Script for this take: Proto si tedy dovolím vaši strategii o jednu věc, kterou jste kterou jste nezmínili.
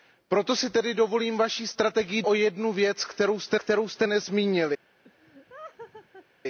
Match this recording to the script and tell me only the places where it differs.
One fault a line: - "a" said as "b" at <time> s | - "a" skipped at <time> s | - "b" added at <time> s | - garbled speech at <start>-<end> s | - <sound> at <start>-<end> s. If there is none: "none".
- laugh at 5.0-6.3 s